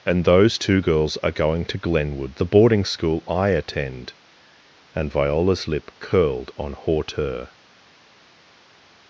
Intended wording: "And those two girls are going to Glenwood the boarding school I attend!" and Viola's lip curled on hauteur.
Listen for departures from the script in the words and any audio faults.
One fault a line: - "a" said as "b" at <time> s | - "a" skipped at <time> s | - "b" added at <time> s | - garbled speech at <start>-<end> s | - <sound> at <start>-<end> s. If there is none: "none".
none